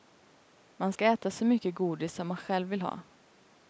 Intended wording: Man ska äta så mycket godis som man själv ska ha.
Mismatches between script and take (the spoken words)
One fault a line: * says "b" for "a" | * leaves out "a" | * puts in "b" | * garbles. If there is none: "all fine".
* says "vill" for "ska"